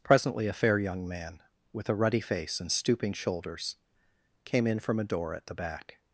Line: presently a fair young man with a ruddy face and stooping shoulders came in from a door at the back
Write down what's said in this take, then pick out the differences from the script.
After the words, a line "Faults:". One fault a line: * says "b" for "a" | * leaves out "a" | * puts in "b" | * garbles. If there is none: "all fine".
presently a fair young man with a ruddy face and stooping shoulders came in from a door at the back
Faults:
all fine